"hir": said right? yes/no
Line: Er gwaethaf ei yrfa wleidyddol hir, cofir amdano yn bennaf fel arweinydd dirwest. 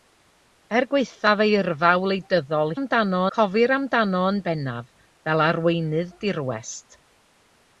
no